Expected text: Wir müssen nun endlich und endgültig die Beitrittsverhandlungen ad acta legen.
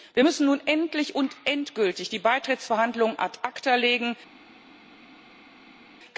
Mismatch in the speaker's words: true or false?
false